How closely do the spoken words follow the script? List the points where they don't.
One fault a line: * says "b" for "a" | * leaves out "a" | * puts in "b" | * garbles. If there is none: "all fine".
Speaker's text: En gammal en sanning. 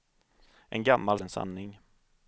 all fine